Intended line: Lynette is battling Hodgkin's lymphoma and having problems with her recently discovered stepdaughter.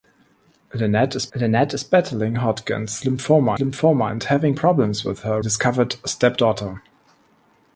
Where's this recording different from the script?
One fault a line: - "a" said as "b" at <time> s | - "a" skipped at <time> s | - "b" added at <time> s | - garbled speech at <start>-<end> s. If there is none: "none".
- "lynette is" added at 1.3 s
- "lymphoma" added at 3.6 s
- "recently" skipped at 5.4 s